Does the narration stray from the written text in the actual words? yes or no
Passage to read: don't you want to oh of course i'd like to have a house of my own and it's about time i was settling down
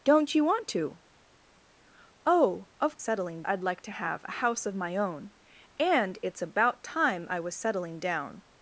yes